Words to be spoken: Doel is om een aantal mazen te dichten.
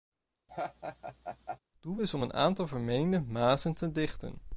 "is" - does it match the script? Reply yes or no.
yes